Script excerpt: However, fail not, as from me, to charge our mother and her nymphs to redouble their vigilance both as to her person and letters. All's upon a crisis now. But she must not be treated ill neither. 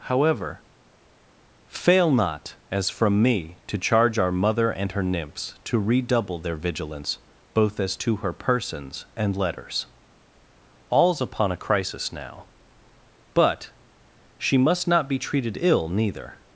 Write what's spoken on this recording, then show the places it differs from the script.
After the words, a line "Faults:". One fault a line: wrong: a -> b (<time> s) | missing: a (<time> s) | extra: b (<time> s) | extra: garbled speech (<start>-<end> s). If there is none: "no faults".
However, fail not, as from me, to charge our mother and her nymphs to redouble their vigilance both as to her persons and letters. All's upon a crisis now. But she must not be treated ill neither.
Faults:
wrong: person -> persons (8.3 s)